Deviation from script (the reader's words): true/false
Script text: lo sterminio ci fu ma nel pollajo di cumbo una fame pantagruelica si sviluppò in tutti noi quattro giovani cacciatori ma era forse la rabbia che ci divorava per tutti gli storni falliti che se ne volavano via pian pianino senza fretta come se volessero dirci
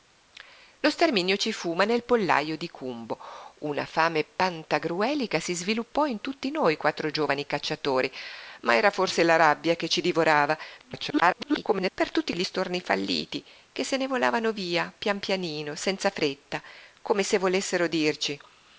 true